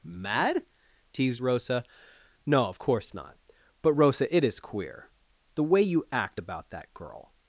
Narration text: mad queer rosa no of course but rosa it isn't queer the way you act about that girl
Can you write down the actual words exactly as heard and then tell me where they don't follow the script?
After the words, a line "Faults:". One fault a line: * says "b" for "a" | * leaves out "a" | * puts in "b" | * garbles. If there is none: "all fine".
mad teased rosa no of course not but rosa it is queer the way you act about that girl
Faults:
* says "teased" for "queer"
* puts in "not"
* says "is" for "isn't"